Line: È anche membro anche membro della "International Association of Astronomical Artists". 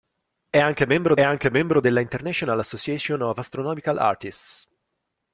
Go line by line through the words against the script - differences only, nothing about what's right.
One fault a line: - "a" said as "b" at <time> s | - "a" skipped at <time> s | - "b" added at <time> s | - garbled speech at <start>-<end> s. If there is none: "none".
none